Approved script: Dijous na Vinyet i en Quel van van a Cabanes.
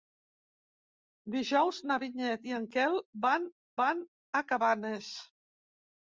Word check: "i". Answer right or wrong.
right